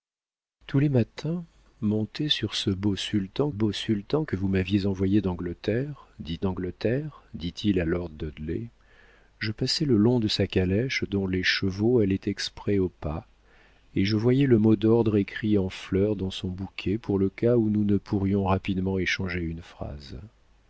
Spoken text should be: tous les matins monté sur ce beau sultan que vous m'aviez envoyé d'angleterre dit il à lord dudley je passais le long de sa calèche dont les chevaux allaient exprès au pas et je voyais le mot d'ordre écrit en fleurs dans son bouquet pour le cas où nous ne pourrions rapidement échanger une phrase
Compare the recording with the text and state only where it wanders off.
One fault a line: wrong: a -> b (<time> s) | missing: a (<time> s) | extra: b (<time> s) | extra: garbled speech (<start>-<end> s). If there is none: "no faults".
extra: beau sultan (3.5 s)
extra: d'angleterre dit (6.4 s)